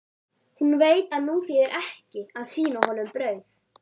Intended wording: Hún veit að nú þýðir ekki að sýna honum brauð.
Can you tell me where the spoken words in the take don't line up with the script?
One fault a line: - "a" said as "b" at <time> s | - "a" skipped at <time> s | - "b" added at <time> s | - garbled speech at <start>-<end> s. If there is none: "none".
none